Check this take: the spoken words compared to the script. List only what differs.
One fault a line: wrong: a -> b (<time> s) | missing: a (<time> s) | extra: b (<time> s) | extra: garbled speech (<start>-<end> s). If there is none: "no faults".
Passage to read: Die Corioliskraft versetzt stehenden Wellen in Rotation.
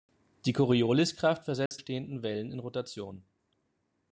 no faults